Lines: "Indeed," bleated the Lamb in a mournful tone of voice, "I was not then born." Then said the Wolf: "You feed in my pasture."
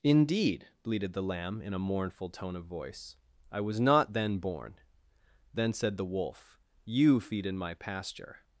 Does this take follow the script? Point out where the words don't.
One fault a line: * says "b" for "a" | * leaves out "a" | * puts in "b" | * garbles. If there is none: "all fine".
all fine